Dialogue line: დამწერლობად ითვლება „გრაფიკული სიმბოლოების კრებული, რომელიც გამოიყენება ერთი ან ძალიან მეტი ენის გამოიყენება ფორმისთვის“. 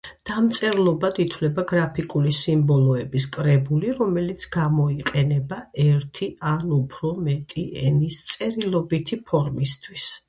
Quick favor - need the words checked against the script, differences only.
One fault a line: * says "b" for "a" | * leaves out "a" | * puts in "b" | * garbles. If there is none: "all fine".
* says "უფრო" for "ძალიან"
* says "წერილობითი" for "გამოიყენება"